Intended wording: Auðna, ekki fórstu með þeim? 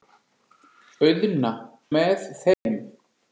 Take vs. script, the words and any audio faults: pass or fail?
fail